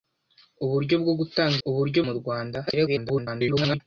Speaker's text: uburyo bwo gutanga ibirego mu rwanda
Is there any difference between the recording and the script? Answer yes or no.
yes